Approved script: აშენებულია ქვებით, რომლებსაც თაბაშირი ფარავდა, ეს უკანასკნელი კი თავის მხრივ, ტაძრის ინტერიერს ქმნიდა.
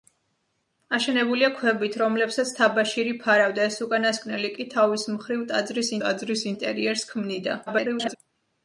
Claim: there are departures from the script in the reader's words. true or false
true